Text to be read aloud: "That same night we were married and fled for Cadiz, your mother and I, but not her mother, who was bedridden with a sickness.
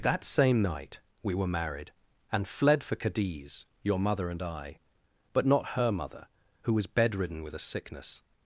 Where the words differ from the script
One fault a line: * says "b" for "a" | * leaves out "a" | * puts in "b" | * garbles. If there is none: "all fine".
all fine